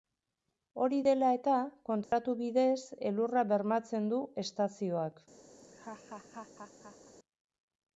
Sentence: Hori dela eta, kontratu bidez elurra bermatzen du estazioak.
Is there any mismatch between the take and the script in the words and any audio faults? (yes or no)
yes